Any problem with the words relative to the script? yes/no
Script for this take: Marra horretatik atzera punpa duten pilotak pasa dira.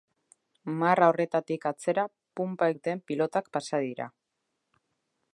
no